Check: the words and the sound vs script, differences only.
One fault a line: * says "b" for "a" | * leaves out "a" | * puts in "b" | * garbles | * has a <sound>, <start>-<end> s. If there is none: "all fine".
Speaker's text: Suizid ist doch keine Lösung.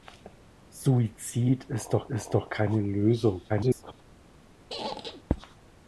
* puts in "ist doch"
* garbles
* has a squeak, 4.7-5.2 s